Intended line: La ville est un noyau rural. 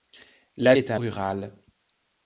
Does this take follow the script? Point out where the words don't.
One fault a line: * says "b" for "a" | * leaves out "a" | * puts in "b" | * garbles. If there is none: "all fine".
* leaves out "ville"
* leaves out "noyau"